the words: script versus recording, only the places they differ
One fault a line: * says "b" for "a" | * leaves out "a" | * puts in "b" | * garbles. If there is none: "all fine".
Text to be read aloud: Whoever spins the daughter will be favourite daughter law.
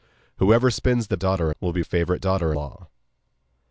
all fine